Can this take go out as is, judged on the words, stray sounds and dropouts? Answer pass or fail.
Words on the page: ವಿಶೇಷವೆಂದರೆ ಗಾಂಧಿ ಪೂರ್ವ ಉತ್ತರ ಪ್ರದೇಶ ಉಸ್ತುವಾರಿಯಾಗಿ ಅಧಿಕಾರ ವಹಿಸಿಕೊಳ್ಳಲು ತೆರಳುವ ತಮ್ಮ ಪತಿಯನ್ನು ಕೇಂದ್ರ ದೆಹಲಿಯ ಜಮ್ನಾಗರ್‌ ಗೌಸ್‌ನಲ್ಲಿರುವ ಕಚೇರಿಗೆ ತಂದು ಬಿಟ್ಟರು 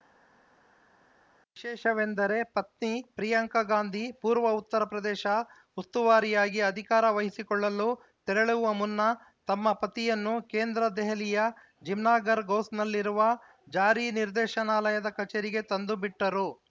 fail